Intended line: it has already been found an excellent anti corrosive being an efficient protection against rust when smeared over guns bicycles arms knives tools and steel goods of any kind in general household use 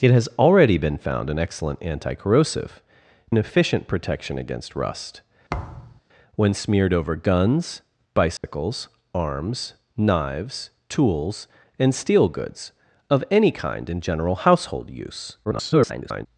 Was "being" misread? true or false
true